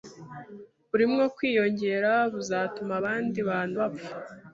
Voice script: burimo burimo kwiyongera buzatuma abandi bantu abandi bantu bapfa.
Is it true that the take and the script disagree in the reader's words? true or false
true